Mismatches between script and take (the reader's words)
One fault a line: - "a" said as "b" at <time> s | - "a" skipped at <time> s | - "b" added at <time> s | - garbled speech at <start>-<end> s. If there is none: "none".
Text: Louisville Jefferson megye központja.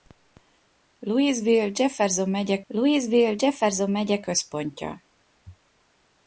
- "louisville Jefferson megye" added at 2.7 s